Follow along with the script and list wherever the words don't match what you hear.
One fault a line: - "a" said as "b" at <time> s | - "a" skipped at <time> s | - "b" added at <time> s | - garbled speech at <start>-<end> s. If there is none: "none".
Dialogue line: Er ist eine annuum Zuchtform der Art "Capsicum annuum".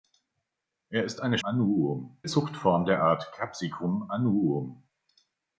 none